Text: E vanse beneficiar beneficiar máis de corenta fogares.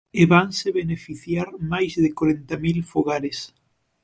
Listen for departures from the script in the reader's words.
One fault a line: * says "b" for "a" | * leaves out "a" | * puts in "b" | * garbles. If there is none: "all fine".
* leaves out "beneficiar"
* puts in "mil"